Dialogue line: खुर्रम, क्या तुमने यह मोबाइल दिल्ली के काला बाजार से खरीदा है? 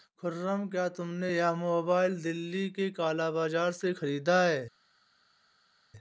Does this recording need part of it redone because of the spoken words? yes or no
no